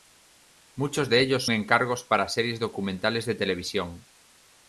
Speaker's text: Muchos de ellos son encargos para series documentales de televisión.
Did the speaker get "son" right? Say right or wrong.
wrong